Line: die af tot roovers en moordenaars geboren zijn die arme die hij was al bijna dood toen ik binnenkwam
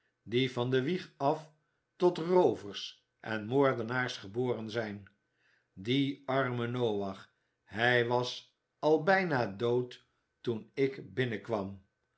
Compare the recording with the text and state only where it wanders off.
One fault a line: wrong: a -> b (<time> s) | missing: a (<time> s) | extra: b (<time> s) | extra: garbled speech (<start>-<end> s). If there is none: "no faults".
extra: van de wieg (0.5 s)
wrong: die -> noach (6.7 s)